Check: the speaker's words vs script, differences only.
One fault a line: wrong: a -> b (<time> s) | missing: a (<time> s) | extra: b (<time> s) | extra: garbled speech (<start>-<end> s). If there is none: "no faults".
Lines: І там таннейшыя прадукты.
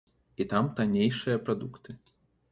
no faults